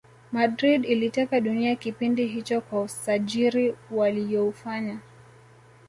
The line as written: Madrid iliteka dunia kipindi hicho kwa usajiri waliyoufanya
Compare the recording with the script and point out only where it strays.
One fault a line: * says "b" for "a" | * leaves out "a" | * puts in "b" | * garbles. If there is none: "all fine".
all fine